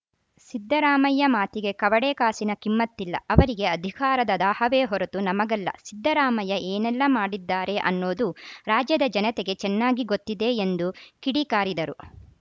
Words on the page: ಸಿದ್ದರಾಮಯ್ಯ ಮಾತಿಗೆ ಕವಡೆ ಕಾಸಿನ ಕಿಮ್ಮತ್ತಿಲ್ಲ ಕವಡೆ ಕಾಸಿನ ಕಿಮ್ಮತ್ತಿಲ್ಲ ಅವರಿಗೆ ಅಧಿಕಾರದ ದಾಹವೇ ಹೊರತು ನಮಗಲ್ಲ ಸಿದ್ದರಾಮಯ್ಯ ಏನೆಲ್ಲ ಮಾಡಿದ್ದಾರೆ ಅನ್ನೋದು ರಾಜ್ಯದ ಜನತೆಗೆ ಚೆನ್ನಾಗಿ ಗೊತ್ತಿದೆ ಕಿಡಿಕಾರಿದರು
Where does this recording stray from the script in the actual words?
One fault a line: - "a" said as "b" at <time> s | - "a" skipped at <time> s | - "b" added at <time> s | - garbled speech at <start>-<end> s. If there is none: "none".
- "ಕವಡೆ ಕಾಸಿನ ಕಿಮ್ಮತ್ತಿಲ್ಲ" skipped at 3.1 s
- "ಎಂದು" added at 10.7 s